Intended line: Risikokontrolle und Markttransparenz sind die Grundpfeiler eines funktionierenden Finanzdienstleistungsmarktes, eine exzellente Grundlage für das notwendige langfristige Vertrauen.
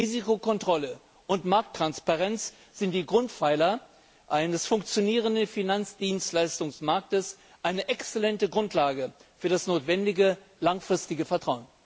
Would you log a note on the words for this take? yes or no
no